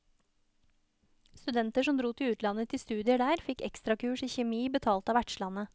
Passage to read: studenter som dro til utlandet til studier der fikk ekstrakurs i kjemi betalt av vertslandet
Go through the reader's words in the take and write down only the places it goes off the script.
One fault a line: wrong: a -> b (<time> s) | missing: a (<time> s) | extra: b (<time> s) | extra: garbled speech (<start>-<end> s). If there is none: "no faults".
no faults